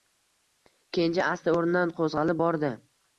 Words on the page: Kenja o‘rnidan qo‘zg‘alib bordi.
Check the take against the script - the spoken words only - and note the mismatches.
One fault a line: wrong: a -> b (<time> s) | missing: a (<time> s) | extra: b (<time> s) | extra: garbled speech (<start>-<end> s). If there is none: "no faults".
extra: asta (1.3 s)